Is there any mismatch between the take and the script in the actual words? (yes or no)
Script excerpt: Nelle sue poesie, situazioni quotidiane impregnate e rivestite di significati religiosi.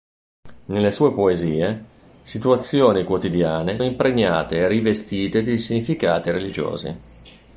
no